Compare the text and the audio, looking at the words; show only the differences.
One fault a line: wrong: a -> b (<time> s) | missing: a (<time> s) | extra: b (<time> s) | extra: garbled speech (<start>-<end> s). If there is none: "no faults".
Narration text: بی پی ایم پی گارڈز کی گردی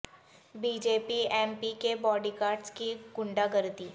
extra: جے (0.8 s)
extra: کے باڈی (1.8 s)
extra: غنڈہ (3.2 s)